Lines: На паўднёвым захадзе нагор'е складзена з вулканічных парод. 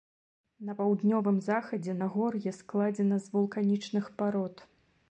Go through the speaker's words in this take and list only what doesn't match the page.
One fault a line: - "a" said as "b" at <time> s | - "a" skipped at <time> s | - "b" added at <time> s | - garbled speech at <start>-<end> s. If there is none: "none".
none